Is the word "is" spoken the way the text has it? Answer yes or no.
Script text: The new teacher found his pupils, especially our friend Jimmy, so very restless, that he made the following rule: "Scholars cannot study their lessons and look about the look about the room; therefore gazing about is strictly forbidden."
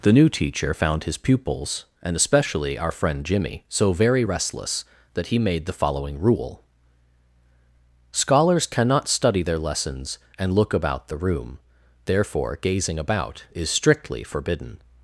yes